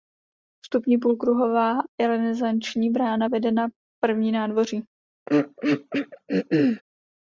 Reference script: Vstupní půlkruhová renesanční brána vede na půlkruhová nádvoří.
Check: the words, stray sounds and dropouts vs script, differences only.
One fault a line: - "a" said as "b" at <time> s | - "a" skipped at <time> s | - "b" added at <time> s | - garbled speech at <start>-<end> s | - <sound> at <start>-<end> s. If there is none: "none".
- "půlkruhová" said as "první" at 4.0 s
- throat clearing at 5.3-6.8 s